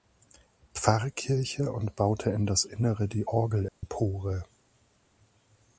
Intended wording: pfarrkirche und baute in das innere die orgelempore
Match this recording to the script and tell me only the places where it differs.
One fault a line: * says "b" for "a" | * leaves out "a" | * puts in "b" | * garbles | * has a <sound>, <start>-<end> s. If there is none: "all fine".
* has a dropout, 3.7-3.8 s